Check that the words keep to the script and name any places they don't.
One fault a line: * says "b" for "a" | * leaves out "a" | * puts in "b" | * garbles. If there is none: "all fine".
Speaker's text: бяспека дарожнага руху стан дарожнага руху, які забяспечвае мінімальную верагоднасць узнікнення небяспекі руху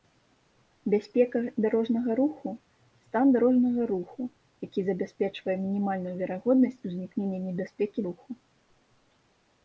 all fine